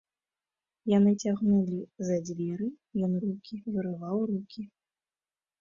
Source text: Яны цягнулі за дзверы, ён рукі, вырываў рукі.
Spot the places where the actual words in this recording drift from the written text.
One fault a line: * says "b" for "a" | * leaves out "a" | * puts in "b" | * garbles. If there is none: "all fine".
all fine